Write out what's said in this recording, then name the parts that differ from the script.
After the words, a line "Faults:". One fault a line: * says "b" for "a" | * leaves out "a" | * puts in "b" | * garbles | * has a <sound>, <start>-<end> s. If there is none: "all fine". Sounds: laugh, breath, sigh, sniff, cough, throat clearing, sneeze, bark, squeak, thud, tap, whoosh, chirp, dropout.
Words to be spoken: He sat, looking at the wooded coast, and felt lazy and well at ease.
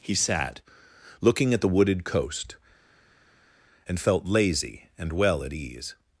He sat, looking at the wooded coast, and felt lazy and well at ease.
Faults:
all fine